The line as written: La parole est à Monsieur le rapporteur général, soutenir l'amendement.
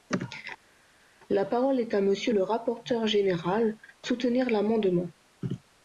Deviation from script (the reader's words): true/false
false